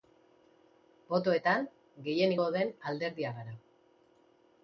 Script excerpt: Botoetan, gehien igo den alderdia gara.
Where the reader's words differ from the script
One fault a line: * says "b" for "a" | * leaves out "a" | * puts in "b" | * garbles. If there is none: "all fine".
all fine